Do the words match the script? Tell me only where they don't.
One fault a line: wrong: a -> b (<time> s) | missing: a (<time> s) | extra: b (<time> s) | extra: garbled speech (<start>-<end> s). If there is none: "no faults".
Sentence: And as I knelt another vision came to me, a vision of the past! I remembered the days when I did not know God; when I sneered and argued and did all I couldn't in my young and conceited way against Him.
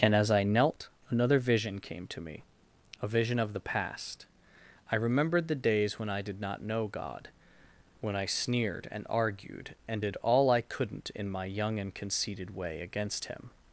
no faults